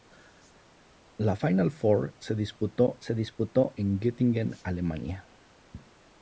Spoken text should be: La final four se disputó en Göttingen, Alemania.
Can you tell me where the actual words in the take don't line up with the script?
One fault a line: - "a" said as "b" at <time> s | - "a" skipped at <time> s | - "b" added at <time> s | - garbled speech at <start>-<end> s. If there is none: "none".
- "se disputó" added at 3.0 s